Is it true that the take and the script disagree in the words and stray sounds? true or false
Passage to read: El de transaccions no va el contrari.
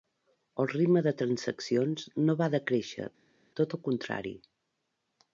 true